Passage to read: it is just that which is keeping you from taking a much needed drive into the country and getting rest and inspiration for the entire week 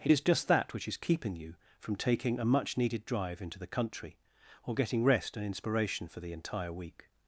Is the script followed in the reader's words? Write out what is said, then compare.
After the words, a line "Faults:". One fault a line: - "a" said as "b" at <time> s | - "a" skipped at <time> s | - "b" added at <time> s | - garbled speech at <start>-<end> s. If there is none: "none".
it is just that which is keeping you from taking a much needed drive into the country or getting rest and inspiration for the entire week
Faults:
- "and" said as "or" at 4.6 s